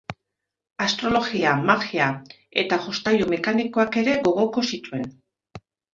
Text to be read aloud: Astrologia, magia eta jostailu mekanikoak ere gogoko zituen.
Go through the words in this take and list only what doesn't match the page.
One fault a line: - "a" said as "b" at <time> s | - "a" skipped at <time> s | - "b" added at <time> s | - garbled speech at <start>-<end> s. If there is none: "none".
none